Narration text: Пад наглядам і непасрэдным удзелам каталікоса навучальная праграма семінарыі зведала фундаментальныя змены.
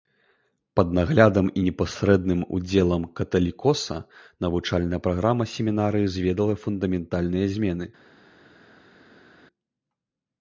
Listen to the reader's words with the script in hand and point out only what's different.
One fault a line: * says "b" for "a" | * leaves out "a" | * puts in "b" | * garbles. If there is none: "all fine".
all fine